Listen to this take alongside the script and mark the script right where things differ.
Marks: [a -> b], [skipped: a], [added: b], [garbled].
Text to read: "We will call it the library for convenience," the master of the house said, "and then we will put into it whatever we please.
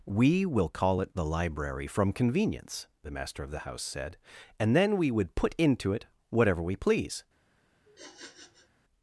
"We will call it the library [for -> from] convenience," the master of the house said, "and then we [will -> would] put into it whatever we please.